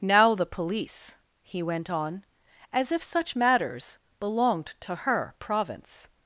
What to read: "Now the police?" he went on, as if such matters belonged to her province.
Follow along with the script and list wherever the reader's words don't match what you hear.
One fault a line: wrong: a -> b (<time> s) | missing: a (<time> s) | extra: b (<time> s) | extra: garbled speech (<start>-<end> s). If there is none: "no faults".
no faults